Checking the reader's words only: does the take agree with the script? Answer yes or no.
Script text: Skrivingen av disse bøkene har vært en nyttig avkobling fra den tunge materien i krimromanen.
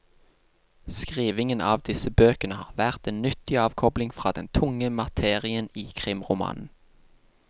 yes